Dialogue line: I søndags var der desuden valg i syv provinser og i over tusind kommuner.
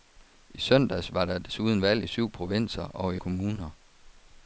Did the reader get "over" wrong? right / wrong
wrong